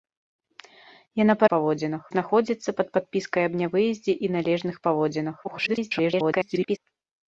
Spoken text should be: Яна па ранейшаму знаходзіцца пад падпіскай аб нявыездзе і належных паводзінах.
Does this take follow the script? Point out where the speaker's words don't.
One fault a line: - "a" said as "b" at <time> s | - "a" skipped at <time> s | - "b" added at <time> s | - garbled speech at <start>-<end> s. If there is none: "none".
- "ранейшаму" said as "паводзінах" at 1.6 s
- garbled speech at 5.4-6.8 s